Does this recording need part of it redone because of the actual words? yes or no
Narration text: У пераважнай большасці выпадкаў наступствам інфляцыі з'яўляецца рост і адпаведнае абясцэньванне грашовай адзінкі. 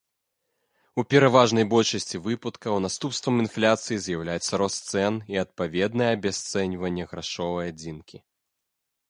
yes